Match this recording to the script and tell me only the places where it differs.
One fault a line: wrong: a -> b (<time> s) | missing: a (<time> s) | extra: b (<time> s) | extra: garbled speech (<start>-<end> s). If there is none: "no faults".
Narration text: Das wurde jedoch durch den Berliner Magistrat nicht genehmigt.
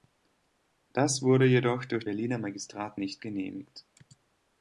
missing: den (2.0 s)